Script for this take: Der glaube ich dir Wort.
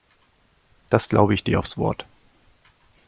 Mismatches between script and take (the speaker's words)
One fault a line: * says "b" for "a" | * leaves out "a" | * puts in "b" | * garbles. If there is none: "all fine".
* says "Das" for "Der"
* puts in "aufs"